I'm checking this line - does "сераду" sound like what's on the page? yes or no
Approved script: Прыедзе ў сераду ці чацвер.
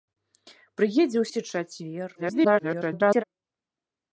no